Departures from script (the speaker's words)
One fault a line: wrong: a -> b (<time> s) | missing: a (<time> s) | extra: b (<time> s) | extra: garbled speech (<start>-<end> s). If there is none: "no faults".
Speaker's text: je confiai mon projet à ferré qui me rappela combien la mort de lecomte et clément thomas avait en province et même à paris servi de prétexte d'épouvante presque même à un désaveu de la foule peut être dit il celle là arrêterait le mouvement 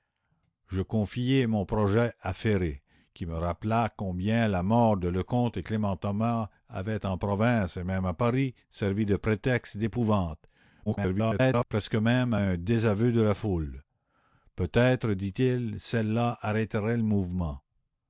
extra: garbled speech (10.9-11.7 s)